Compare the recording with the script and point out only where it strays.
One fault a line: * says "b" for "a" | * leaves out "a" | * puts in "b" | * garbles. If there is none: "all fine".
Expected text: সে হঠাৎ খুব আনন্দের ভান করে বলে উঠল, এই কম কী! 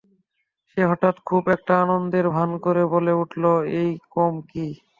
* puts in "একটা"